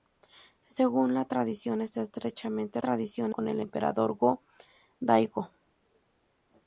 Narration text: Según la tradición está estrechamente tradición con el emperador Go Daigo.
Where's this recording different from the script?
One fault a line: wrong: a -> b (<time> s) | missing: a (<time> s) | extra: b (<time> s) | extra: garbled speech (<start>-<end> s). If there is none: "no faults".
no faults